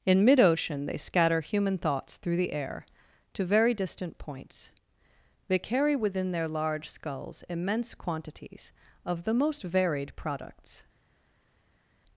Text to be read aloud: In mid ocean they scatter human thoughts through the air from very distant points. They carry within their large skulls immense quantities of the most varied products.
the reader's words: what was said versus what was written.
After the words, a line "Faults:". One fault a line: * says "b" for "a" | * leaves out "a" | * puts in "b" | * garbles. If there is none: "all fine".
In mid ocean they scatter human thoughts through the air to very distant points. They carry within their large skulls immense quantities of the most varied products.
Faults:
* says "to" for "from"